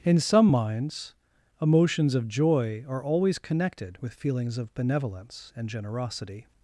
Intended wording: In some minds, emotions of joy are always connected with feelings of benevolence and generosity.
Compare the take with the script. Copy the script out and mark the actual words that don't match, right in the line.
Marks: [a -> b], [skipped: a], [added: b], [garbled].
In some minds, emotions of joy are always connected with feelings of benevolence and generosity.